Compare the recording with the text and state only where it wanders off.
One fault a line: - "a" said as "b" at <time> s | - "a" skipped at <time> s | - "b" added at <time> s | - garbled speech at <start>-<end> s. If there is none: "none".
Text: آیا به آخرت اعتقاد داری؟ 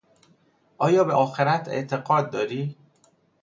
none